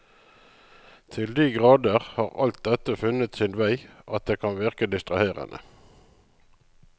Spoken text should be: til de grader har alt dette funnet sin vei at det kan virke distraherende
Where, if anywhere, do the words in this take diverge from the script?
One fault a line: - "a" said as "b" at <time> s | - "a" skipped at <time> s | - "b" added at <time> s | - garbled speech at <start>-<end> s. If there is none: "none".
none